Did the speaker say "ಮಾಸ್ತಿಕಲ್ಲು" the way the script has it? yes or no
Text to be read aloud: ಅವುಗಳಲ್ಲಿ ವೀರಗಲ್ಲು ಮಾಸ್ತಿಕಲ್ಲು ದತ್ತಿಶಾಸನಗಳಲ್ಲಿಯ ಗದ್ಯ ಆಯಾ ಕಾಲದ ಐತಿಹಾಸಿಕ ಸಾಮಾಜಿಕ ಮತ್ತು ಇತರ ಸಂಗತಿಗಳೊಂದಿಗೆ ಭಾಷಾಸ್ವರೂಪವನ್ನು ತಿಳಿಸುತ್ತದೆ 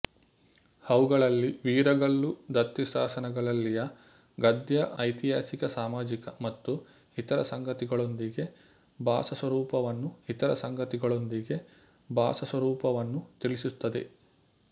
no